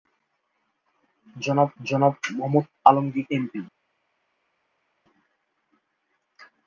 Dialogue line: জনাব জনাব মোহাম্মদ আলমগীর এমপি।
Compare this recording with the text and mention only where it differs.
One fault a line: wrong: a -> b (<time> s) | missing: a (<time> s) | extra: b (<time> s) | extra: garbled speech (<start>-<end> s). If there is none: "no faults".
no faults